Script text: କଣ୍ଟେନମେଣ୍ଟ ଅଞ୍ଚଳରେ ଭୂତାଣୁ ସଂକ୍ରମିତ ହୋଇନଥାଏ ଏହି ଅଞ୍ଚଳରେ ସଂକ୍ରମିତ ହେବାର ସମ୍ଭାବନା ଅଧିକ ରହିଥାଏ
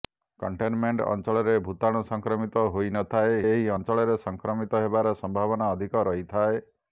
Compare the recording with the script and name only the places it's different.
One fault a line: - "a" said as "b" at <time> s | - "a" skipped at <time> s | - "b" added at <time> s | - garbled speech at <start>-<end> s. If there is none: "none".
none